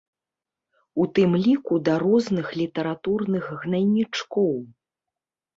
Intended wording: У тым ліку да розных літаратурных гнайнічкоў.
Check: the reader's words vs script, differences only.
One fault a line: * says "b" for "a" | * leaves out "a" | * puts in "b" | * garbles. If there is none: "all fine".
all fine